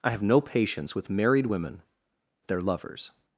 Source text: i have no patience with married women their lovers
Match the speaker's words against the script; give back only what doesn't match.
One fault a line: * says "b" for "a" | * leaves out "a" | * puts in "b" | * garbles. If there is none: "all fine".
all fine